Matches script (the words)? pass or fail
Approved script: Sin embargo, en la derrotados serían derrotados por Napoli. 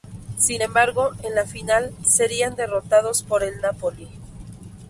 fail